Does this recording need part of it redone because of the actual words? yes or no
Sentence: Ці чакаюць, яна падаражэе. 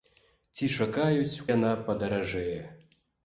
no